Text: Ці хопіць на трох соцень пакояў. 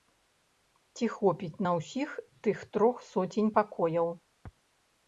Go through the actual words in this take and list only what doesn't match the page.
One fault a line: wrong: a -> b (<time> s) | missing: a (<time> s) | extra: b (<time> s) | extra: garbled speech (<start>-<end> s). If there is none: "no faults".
extra: ўсіх тых (1.8 s)